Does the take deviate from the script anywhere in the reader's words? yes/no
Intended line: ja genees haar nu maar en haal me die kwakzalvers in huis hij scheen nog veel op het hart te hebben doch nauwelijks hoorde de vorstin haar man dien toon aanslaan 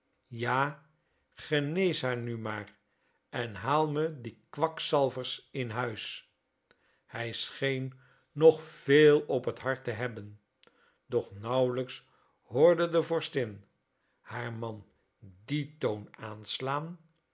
no